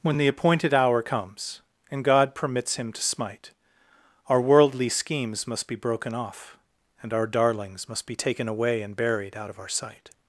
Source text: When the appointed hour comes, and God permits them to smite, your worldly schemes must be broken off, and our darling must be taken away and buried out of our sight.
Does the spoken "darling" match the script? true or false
false